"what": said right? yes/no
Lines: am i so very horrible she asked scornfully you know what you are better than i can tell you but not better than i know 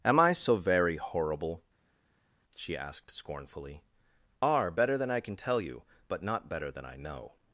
no